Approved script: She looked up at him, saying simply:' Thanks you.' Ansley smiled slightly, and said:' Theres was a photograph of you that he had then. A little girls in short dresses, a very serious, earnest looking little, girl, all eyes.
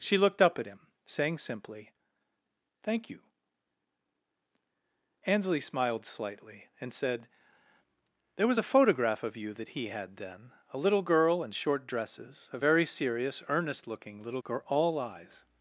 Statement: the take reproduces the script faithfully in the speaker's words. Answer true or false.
false